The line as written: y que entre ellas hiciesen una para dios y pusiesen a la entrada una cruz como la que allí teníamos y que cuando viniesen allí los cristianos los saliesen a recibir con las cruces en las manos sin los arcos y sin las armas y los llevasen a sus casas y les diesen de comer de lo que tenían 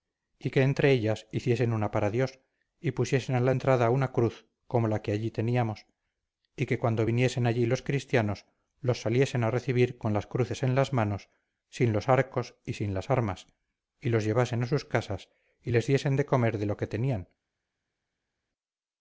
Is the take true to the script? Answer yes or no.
yes